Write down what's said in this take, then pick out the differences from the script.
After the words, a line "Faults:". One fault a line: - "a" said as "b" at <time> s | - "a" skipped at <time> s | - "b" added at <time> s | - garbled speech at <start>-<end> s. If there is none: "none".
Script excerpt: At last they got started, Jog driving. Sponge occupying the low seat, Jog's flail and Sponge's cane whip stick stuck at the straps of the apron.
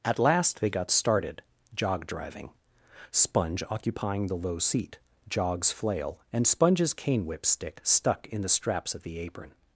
At last they got started, Jog driving. Sponge occupying the low seat, Jog's flail and Sponge's cane whip stick stuck in the straps of the apron.
Faults:
- "at" said as "in" at 8.3 s